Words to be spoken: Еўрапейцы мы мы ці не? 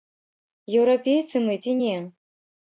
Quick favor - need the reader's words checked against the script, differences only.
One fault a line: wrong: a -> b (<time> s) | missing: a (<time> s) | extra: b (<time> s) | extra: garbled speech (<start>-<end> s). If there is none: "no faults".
missing: мы (1.6 s)